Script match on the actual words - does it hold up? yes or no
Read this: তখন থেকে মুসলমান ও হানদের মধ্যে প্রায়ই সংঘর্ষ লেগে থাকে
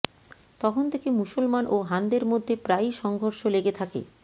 yes